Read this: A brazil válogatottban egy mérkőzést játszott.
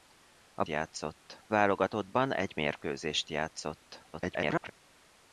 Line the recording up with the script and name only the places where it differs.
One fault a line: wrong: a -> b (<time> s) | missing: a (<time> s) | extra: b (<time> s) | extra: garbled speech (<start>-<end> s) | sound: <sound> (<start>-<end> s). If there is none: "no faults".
wrong: brazil -> játszott (0.7 s)
extra: garbled speech (4.1-4.7 s)